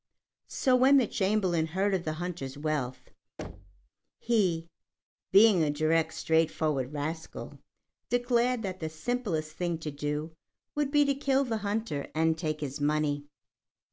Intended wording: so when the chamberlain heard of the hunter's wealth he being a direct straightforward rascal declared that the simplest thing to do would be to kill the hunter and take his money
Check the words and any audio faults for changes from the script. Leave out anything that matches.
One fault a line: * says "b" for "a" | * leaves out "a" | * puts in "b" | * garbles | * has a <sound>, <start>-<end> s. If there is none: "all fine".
* has a thud, 3.4-3.9 s